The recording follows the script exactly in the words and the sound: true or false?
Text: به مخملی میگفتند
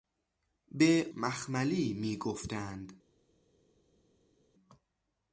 true